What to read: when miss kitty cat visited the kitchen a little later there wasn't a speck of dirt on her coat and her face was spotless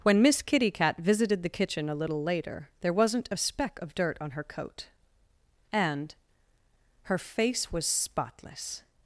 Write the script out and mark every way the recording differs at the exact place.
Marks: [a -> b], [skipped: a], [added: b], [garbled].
when miss kitty cat visited the kitchen a little later there wasn't a speck of dirt on her coat and her face was spotless